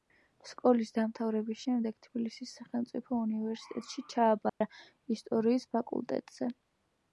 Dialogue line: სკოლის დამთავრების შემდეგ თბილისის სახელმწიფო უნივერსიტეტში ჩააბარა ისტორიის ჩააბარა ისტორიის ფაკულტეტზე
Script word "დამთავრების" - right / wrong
right